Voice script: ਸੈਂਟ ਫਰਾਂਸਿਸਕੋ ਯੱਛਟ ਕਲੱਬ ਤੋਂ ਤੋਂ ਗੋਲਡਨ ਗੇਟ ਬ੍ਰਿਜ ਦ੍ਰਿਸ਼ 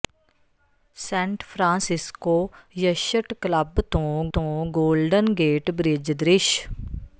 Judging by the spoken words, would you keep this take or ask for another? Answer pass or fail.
pass